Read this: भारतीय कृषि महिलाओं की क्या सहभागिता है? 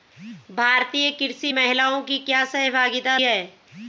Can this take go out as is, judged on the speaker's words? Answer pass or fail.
pass